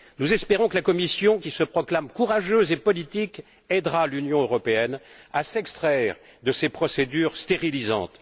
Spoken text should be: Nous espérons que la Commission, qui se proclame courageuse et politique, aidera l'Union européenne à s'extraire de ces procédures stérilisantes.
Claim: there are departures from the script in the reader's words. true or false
false